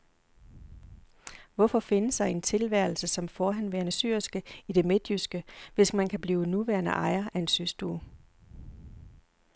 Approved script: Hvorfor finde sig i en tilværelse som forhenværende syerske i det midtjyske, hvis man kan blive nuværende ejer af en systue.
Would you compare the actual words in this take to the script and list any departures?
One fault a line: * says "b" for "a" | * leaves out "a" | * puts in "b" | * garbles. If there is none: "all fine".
all fine